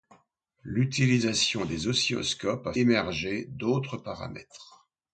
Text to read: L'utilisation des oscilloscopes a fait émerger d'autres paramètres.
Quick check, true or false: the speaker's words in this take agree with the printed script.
false